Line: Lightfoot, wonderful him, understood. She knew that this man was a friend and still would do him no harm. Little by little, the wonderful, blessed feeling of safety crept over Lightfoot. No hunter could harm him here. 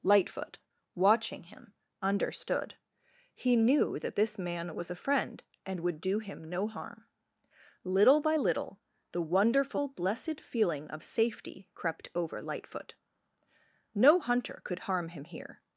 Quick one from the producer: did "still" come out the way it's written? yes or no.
no